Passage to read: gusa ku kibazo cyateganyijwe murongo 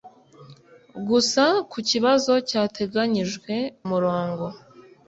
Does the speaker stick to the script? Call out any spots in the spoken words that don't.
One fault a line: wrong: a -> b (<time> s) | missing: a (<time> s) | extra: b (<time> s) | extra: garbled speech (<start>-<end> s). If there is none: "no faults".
no faults